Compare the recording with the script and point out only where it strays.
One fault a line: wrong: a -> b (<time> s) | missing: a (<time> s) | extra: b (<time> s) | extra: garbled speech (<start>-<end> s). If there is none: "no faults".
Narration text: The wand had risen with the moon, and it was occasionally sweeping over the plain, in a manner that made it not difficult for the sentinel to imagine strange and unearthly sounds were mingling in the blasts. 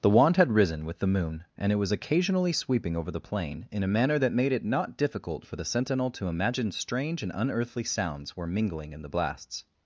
no faults